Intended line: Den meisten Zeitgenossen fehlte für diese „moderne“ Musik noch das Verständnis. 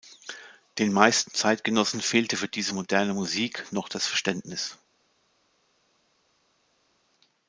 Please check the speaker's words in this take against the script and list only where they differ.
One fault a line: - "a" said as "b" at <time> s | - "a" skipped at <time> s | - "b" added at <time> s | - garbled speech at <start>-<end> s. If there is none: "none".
none